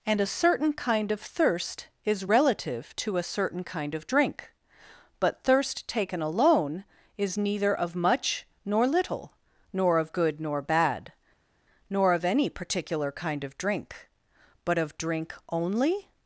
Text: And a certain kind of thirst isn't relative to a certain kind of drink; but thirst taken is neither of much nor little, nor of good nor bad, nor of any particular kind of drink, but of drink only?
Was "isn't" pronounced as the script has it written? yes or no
no